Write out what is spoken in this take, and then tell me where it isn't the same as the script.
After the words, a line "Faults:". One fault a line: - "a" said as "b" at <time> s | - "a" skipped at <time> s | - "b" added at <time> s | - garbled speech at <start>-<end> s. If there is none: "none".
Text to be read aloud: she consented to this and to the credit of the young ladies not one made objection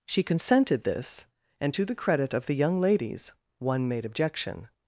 she consented this and to the credit of the young ladies one made objection
Faults:
- "to" skipped at 0.8 s
- "not" skipped at 3.3 s